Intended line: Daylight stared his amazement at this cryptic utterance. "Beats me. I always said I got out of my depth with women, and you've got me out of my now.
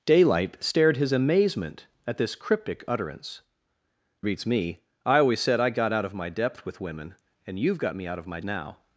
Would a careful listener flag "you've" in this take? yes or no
no